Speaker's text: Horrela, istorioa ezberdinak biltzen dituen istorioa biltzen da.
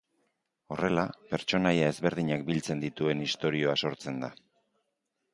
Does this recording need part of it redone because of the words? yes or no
yes